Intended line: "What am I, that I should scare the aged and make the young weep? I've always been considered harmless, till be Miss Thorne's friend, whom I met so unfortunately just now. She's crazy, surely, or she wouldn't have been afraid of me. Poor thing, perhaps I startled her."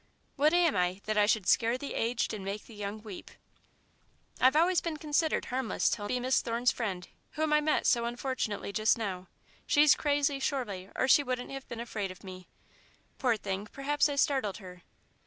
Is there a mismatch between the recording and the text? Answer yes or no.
no